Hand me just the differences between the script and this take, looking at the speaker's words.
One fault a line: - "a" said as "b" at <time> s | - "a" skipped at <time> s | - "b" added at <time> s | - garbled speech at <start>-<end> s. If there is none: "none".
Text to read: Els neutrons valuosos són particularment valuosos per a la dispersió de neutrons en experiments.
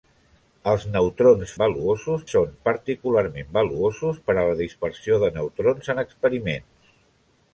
none